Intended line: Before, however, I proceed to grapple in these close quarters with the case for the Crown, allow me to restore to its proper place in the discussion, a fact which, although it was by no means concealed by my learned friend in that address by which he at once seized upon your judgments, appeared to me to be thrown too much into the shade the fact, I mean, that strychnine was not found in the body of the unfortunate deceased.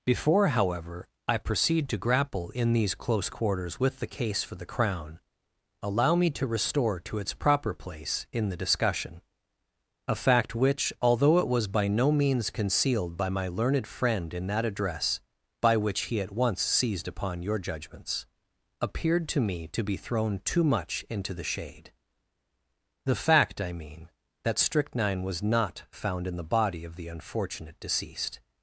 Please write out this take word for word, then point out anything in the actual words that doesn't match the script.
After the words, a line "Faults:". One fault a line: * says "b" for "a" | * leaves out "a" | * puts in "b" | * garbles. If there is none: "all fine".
Before, however, I proceed to grapple in these close quarters with the case for the Crown, allow me to restore to its proper place in the discussion, a fact which, although it was by no means concealed by my learned friend in that address by which he at once seized upon your judgments, appeared to me to be thrown too much into the shade the fact, I mean, that strychnine was not found in the body of the unfortunate deceased.
Faults:
all fine